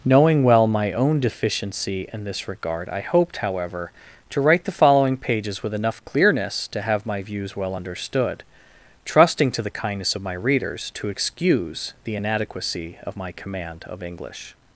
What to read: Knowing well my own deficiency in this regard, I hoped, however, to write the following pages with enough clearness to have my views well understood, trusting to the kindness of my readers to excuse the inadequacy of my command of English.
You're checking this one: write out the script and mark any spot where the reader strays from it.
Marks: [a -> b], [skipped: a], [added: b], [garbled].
Knowing well my own deficiency in this regard, I hoped, however, to write the following pages with enough clearness to have my views well understood, trusting to the kindness of my readers to excuse the inadequacy of my command of English.